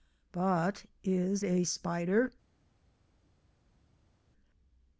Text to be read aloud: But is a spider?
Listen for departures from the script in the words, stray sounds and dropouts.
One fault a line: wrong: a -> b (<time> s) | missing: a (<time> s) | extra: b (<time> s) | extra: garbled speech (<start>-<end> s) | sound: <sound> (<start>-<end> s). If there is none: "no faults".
no faults